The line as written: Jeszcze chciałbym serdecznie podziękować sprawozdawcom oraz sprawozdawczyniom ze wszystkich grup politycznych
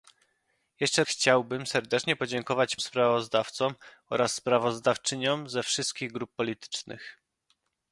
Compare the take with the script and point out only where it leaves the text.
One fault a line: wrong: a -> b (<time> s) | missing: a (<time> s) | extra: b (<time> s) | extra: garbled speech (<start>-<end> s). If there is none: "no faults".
no faults